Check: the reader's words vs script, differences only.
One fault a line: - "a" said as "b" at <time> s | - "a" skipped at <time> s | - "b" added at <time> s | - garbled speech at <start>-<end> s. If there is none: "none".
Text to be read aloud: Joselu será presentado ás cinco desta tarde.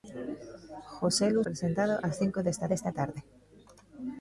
- "será" skipped at 1.4 s
- "desta" added at 2.7 s